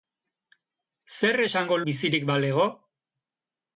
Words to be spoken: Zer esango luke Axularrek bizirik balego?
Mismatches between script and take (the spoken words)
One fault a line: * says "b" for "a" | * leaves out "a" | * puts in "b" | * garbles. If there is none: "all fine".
* leaves out "luke Axularrek"